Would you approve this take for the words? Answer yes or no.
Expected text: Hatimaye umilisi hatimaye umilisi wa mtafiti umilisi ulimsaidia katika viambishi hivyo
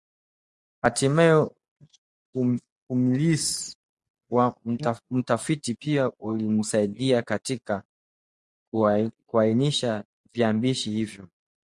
no